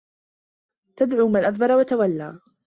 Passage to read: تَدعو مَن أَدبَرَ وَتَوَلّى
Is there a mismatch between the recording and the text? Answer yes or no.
no